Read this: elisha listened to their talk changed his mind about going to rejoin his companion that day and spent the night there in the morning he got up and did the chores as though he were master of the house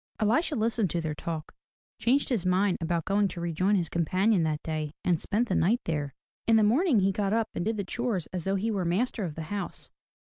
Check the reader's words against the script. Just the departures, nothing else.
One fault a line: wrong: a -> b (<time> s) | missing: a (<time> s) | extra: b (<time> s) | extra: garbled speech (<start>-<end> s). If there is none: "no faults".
no faults